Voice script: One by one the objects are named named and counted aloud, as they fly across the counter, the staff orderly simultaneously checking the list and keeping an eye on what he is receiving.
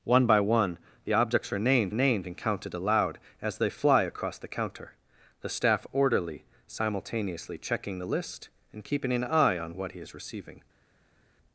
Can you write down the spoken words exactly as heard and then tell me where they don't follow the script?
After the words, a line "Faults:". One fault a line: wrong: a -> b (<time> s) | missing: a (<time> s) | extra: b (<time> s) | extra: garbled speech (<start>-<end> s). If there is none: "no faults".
One by one the objects are named named and counted aloud, as they fly across the counter, the staff orderly simultaneously checking the list and keeping an eye on what he is receiving.
Faults:
no faults